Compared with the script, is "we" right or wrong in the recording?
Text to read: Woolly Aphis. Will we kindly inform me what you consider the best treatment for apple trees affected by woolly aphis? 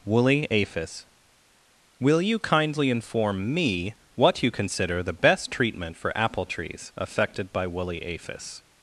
wrong